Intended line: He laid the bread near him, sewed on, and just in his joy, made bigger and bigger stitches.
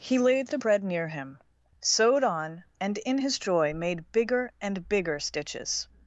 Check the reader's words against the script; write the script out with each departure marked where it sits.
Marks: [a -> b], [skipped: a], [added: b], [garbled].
He laid the bread near him, sewed on, and [skipped: just] in his joy, made bigger and bigger stitches.